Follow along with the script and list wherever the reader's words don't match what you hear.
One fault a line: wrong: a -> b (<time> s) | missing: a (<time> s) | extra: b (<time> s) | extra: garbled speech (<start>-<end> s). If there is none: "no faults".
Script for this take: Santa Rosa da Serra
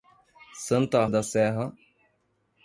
missing: Rosa (1.1 s)